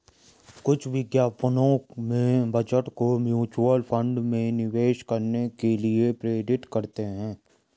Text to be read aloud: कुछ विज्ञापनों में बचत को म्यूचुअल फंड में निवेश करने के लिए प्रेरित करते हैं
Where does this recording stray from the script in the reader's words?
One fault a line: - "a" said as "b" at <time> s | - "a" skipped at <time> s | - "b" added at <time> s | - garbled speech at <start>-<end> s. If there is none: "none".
none